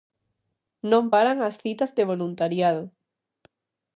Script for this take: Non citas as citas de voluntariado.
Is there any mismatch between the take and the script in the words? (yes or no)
yes